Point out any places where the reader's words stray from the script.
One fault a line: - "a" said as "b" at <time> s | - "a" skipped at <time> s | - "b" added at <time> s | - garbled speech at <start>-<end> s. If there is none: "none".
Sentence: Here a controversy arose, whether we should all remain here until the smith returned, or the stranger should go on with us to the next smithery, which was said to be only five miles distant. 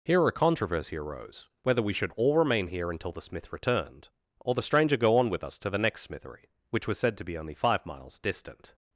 - "should" skipped at 5.0 s